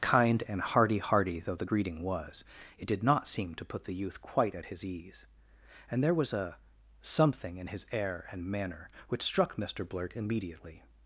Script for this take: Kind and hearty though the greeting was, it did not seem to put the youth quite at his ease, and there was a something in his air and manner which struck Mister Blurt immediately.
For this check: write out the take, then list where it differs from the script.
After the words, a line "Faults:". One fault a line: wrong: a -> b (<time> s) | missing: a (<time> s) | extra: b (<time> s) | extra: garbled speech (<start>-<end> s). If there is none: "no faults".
Kind and hearty hearty though the greeting was, it did not seem to put the youth quite at his ease, and there was a something in his air and manner which struck Mister Blurt immediately.
Faults:
extra: hearty (1.0 s)